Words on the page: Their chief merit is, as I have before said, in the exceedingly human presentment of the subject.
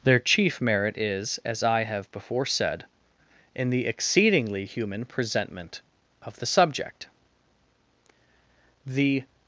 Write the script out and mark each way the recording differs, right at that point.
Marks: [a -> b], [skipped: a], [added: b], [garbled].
Their chief merit is, as I have before said, in the exceedingly human presentment of the subject. [added: The]